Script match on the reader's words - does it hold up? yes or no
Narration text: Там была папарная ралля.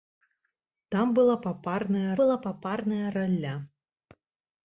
no